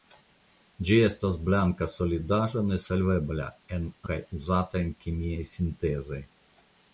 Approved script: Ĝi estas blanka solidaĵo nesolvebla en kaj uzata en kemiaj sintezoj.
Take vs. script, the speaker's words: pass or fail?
pass